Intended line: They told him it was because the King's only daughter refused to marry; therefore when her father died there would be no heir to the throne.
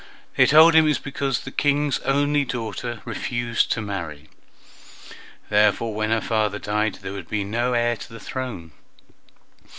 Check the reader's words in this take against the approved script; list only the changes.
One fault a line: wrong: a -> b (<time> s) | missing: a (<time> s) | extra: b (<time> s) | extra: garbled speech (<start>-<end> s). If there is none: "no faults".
no faults